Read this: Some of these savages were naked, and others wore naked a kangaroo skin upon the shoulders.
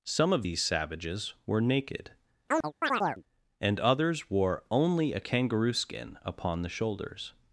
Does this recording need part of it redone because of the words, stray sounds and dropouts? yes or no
yes